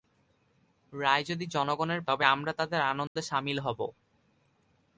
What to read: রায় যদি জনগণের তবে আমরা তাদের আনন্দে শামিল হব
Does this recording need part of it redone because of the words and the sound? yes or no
yes